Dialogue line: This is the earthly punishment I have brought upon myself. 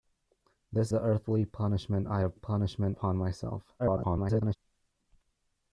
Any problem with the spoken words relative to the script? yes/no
yes